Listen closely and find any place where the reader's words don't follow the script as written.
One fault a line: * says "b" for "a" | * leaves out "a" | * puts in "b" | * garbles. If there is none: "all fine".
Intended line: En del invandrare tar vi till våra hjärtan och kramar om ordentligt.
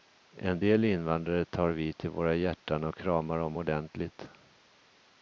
all fine